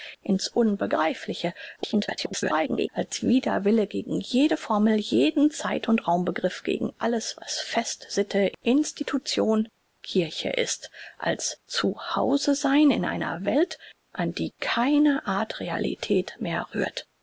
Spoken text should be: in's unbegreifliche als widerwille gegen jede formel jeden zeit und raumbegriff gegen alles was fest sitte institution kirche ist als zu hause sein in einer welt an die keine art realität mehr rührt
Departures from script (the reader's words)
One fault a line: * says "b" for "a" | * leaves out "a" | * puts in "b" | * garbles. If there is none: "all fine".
* garbles